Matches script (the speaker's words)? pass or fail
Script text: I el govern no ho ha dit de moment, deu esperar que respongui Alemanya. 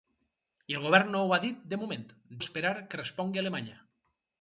fail